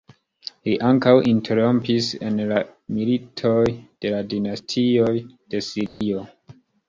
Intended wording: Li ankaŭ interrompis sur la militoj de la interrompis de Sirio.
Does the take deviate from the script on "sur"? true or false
true